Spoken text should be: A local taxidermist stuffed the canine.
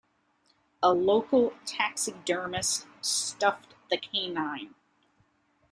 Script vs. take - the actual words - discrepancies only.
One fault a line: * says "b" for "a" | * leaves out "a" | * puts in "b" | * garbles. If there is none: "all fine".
all fine